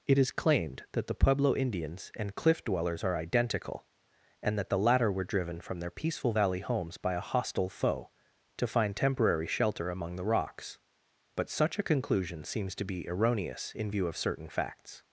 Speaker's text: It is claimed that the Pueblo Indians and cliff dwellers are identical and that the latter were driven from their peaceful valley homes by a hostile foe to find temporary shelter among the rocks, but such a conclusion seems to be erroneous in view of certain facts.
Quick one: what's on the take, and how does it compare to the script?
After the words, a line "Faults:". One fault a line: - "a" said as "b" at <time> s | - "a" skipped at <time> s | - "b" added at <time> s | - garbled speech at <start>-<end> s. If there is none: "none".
It is claimed that the Pueblo Indians and cliff dwellers are identical and that the latter were driven from their peaceful valley homes by a hostile foe to find temporary shelter among the rocks, but such a conclusion seems to be erroneous in view of certain facts.
Faults:
none